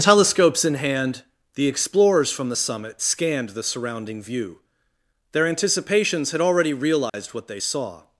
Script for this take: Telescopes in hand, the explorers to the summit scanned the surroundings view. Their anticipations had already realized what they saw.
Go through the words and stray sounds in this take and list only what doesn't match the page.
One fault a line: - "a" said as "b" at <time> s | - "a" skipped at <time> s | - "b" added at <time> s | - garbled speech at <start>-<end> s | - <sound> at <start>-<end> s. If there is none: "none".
- "to" said as "from" at 2.3 s
- "surroundings" said as "surrounding" at 3.6 s
- dropout at 7.1-7.1 s